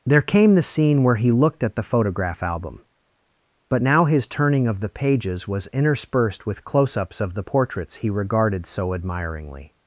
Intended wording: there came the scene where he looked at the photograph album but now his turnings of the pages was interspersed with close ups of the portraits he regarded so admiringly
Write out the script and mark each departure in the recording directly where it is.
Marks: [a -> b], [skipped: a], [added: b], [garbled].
there came the scene where he looked at the photograph album but now his [turnings -> turning] of the pages was interspersed with close ups of the portraits he regarded so admiringly